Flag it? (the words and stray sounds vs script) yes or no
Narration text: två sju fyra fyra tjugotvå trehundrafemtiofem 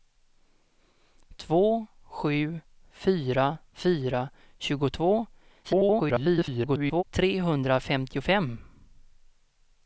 yes